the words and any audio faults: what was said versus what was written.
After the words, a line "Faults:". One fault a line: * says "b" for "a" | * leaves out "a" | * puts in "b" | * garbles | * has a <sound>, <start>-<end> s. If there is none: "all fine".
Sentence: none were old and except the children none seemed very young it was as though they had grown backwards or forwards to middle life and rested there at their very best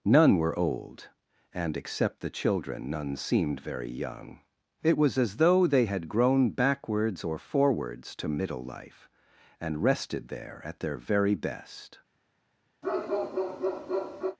none were old and except the children none seemed very young it was as though they had grown backwards or forwards to middle life and rested there at their very best
Faults:
* has a bark, 12.8-14.4 s